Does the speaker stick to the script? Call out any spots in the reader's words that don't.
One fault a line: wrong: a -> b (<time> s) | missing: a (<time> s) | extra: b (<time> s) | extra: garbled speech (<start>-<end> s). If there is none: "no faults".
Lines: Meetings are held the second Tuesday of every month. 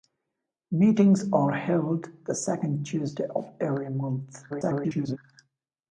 extra: garbled speech (4.5-5.2 s)